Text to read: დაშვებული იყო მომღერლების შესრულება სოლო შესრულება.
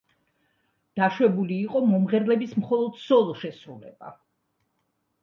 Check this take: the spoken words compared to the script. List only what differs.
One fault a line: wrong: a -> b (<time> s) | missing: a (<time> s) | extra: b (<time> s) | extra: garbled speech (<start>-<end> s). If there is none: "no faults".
wrong: შესრულება -> მხოლოდ (2.6 s)